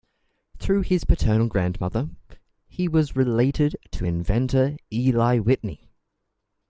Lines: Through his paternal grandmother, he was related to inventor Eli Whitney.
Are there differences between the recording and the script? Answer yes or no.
no